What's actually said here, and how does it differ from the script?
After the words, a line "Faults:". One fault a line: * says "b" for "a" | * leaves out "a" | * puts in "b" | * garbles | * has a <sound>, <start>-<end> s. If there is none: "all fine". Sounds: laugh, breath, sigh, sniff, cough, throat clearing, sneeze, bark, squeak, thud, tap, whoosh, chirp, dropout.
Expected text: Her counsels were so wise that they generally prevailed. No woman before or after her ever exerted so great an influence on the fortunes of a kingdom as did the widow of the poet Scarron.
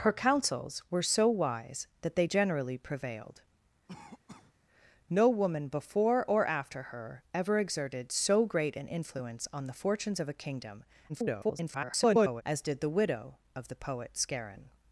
Her counsels were so wise that they generally prevailed. No woman before or after her ever exerted so great an influence on the fortunes of a kingdom [garbled] as did the widow of the poet Scarron.
Faults:
* has a cough, 3.9-4.5 s
* garbles